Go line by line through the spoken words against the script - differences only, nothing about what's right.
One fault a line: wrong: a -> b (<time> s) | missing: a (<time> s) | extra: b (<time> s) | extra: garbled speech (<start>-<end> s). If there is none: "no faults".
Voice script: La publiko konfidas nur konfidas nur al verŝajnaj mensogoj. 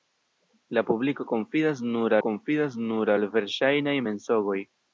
no faults